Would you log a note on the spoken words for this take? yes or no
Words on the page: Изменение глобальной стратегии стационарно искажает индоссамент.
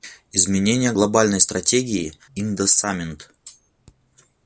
yes